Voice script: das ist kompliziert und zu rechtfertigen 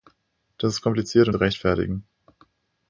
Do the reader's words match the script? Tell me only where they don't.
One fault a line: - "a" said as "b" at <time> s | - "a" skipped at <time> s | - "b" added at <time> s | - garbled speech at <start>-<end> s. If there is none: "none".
none